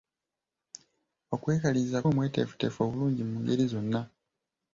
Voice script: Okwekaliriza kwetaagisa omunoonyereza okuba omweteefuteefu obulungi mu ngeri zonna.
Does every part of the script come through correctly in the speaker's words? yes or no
no